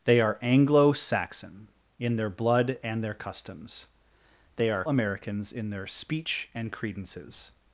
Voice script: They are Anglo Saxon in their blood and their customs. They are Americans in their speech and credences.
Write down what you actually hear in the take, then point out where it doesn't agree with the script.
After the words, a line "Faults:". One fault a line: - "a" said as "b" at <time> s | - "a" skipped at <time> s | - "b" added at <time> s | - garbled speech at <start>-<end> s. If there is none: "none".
They are Anglo Saxon in their blood and their customs. They are Americans in their speech and credences.
Faults:
none